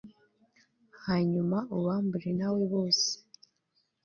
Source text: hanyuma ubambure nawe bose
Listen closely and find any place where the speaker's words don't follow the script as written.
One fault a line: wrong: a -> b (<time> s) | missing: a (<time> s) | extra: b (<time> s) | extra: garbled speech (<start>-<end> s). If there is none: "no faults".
no faults